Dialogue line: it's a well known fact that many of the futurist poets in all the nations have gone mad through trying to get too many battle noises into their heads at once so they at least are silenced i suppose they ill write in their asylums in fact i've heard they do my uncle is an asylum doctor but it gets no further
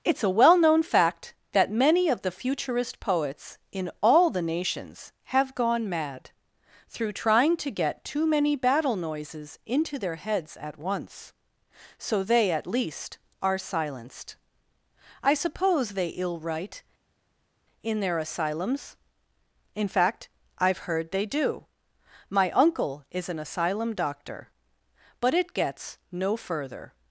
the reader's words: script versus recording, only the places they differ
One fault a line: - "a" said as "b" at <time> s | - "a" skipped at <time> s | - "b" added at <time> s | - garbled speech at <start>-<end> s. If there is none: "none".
none